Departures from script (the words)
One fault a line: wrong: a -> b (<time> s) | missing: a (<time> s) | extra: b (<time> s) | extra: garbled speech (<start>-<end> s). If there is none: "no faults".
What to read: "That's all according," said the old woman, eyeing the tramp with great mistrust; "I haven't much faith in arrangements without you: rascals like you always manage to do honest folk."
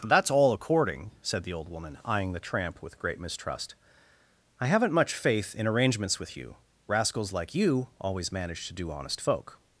wrong: without -> with (6.2 s)